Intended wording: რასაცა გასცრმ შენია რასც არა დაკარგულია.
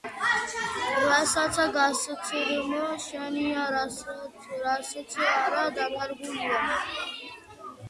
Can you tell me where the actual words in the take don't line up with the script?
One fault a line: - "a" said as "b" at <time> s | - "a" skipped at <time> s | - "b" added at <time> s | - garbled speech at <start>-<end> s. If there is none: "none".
none